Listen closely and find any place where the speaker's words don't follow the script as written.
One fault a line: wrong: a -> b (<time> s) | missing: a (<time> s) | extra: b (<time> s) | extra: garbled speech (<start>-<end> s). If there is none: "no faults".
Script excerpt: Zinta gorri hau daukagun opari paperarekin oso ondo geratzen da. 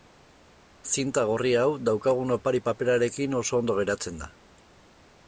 no faults